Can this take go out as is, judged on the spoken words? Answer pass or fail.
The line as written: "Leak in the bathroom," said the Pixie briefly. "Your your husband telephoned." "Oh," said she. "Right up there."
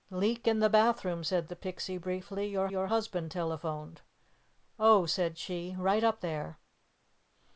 pass